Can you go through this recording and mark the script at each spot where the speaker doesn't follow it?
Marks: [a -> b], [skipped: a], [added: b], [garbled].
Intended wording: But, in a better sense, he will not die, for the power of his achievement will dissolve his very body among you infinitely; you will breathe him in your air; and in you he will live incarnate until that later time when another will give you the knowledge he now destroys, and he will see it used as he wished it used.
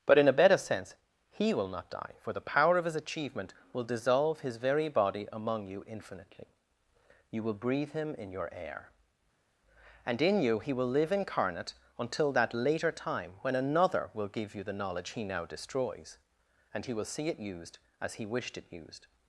But, in a better sense, he will not die, for the power of his achievement will dissolve his very body among you infinitely; you will breathe him in your air; and in you he will live incarnate until that later time when another will give you the knowledge he now destroys, and he will see it used as he wished it used.